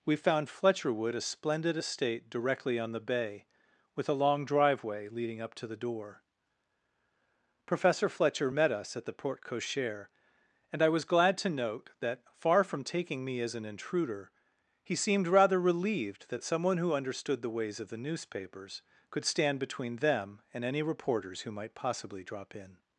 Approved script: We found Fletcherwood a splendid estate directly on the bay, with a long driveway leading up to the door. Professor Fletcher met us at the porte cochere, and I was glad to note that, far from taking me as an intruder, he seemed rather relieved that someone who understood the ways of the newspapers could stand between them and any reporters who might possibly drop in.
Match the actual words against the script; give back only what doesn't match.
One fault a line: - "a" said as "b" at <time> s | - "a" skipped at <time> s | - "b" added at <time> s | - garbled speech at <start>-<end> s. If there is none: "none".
none